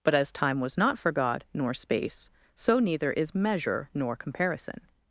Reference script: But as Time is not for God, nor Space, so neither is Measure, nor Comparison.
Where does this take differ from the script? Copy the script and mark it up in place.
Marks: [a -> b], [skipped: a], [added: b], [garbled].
But as Time [is -> was] not for God, nor Space, so neither is Measure, nor Comparison.